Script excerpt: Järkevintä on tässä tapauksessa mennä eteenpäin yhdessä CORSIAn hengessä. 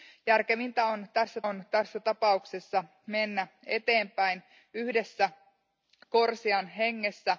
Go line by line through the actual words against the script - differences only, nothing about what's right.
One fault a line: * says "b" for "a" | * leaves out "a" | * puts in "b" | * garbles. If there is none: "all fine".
* puts in "on tässä"